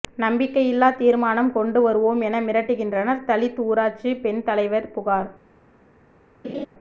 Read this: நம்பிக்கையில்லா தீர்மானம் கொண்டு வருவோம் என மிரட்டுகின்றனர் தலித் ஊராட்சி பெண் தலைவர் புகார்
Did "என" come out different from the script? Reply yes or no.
no